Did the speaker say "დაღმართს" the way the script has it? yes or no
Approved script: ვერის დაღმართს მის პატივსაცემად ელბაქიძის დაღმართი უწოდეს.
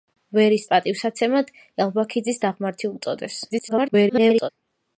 no